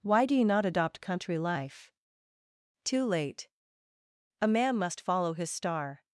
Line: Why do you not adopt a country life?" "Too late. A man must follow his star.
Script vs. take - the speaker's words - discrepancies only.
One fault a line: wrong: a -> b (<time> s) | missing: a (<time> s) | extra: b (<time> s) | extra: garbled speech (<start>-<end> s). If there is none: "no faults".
missing: a (1.0 s)